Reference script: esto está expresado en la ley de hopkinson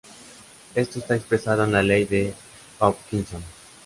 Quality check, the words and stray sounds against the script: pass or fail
pass